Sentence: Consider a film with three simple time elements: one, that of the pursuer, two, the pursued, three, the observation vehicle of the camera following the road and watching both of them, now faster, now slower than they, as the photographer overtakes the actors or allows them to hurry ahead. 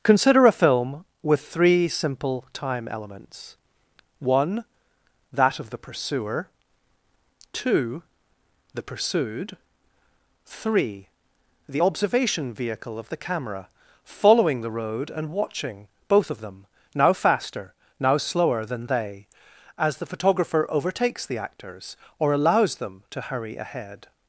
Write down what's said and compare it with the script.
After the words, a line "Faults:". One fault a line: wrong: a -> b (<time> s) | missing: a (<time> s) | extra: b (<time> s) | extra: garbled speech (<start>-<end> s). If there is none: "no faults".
Consider a film with three simple time elements: one, that of the pursuer, two, the pursued, three, the observation vehicle of the camera following the road and watching both of them, now faster, now slower than they, as the photographer overtakes the actors or allows them to hurry ahead.
Faults:
no faults